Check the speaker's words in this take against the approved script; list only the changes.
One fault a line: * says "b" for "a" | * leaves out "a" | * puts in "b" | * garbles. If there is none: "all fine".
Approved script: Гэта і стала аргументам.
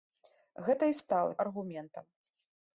all fine